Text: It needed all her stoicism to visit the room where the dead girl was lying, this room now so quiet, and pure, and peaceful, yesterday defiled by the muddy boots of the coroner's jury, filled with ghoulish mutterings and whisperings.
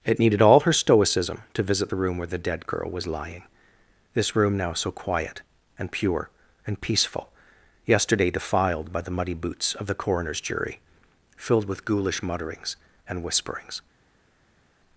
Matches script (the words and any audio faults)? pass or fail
pass